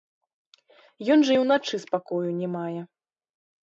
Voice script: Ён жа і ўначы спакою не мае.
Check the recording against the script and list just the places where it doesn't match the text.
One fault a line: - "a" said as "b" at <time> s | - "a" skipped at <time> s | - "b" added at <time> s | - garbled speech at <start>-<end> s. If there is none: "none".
none